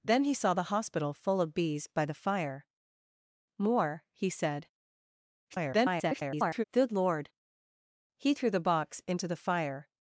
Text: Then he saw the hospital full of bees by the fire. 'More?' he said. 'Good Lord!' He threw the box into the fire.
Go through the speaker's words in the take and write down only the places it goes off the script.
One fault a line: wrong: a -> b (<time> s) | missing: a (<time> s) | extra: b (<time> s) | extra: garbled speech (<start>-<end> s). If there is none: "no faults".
extra: garbled speech (5.5-6.6 s)